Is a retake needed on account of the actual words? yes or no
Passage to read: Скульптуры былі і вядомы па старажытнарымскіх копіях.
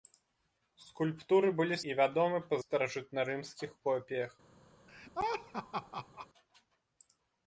no